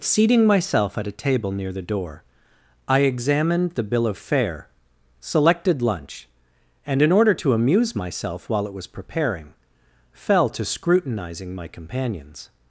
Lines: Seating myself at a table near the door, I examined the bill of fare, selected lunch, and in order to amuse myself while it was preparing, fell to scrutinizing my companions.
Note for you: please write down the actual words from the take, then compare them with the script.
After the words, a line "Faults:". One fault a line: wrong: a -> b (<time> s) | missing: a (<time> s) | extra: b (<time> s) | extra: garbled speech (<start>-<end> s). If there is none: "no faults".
Seating myself at a table near the door, I examined the bill of fare, selected lunch, and in order to amuse myself while it was preparing, fell to scrutinizing my companions.
Faults:
no faults